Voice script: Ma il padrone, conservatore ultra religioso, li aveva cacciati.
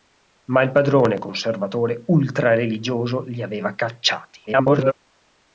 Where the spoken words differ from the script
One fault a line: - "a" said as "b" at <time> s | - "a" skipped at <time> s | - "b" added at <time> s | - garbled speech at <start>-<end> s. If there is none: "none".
- garbled speech at 4.5-4.9 s